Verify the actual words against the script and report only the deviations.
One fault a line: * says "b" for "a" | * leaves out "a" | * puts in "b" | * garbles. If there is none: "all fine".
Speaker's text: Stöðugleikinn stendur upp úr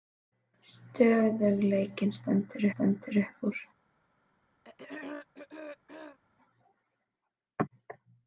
* puts in "stendur"